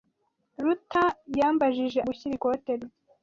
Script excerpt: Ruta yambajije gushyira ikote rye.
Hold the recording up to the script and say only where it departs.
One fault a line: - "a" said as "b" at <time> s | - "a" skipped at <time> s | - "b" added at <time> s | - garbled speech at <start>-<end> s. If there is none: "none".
none